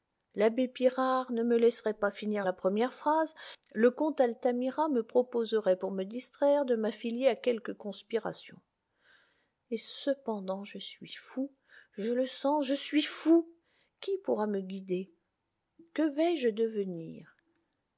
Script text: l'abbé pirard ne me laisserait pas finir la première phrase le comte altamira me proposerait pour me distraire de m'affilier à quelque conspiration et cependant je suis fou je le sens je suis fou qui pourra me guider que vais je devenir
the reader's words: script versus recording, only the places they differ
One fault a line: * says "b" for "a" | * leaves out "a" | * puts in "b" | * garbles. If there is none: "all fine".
all fine